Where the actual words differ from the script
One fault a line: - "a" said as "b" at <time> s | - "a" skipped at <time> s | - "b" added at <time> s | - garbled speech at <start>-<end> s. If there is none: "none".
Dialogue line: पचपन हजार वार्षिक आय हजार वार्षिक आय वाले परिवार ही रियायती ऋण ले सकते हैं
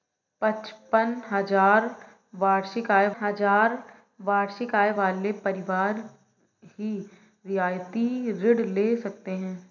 none